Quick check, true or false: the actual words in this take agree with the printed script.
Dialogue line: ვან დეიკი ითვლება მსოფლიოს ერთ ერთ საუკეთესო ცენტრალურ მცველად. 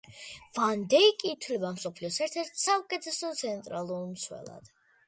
true